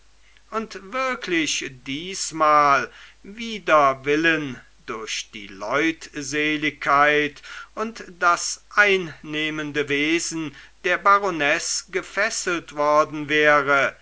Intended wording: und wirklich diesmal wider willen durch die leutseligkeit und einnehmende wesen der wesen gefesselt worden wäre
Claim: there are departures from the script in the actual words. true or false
true